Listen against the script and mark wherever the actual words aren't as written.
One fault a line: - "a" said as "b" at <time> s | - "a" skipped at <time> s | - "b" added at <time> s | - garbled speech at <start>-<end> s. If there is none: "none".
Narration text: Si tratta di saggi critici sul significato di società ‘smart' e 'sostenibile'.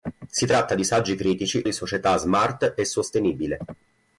- "sul significato" skipped at 1.7 s